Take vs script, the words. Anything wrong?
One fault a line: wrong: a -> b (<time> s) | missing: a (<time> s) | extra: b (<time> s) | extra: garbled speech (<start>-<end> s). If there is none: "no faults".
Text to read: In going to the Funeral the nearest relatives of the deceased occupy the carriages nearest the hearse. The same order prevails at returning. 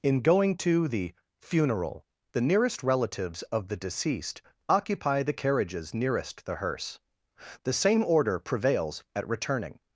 no faults